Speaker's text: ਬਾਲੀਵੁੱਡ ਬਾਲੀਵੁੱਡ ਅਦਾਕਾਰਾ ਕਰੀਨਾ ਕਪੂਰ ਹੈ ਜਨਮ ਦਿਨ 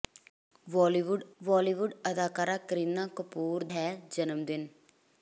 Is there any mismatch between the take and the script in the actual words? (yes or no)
no